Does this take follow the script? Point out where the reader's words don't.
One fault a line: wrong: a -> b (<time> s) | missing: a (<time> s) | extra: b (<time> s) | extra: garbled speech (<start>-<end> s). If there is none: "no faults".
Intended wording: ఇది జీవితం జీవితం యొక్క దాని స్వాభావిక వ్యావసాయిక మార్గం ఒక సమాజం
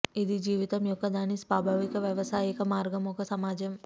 missing: జీవితం (0.8 s)